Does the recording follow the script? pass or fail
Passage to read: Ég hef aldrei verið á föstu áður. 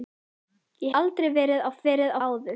fail